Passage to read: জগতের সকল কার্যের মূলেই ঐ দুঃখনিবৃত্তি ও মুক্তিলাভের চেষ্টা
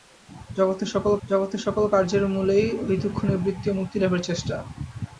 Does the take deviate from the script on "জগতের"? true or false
false